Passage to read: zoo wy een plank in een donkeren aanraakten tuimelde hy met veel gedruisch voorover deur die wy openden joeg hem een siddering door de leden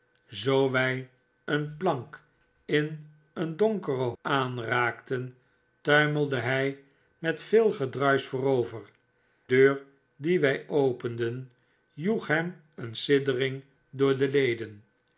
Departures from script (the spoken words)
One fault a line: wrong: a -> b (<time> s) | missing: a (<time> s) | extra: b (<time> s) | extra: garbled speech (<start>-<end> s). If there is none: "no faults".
no faults